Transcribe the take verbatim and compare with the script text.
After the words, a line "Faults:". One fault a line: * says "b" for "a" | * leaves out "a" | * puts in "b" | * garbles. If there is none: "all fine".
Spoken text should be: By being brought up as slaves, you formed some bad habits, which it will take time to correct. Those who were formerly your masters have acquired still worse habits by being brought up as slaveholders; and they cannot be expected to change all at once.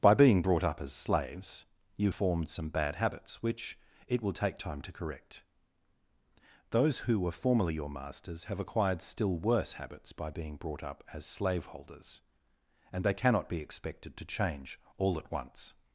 By being brought up as slaves, you formed some bad habits, which it will take time to correct. Those who were formerly your masters have acquired still worse habits by being brought up as slaveholders; and they cannot be expected to change all at once.
Faults:
all fine